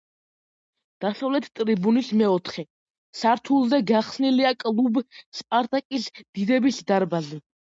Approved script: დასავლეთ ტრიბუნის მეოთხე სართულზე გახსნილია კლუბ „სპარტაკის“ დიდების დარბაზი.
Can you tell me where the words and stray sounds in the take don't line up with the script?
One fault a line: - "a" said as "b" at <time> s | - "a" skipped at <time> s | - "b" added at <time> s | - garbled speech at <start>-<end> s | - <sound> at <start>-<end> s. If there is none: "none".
none